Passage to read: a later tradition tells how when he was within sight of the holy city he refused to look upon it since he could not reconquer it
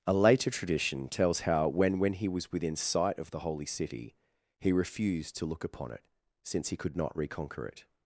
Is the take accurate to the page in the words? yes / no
no